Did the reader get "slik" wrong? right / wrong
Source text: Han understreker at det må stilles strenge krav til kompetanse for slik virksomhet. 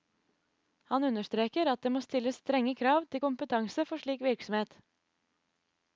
right